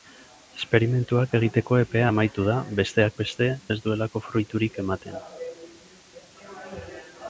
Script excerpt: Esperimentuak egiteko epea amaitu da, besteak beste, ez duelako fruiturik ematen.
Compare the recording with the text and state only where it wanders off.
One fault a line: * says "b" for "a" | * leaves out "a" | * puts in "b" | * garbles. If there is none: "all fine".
all fine